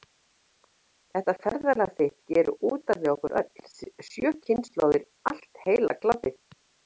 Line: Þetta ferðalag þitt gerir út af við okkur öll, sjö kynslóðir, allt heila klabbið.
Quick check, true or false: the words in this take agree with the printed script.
true